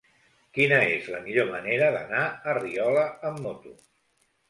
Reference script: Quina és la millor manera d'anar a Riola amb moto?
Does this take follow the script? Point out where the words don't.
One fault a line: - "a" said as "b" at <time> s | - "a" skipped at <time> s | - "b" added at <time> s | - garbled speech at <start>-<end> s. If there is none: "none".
none